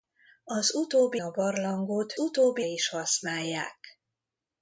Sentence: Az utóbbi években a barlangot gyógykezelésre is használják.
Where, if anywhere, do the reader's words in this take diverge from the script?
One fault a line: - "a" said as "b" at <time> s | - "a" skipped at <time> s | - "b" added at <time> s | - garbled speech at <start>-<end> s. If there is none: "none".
- "években" skipped at 1.2 s
- "gyógykezelésre" said as "utóbbi" at 2.2 s